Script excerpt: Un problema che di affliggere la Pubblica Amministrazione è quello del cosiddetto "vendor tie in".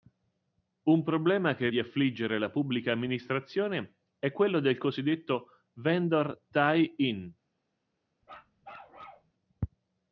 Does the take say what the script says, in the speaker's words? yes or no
yes